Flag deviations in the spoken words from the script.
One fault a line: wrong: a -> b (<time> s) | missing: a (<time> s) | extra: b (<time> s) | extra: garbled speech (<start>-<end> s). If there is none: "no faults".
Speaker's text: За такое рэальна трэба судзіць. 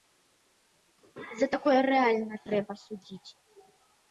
no faults